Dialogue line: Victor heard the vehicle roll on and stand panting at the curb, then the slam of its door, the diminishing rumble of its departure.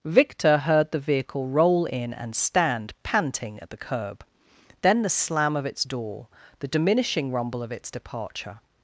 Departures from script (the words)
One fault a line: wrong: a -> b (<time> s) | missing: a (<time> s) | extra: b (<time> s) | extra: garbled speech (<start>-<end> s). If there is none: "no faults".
wrong: on -> in (1.9 s)